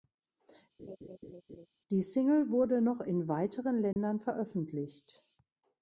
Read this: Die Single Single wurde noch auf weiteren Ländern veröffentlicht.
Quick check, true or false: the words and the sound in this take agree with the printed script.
false